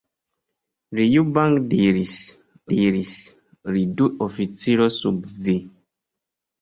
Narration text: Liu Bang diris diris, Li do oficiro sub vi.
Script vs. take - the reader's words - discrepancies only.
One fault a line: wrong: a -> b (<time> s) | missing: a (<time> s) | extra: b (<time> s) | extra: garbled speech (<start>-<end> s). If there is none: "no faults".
no faults